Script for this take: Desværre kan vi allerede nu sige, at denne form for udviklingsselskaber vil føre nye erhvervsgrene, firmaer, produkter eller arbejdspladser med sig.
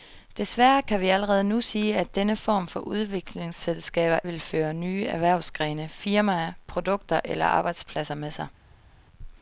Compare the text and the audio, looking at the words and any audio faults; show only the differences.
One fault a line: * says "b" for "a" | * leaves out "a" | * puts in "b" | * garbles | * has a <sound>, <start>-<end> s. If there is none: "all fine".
all fine